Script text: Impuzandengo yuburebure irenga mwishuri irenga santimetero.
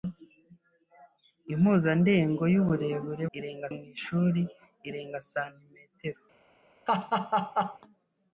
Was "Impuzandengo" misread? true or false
false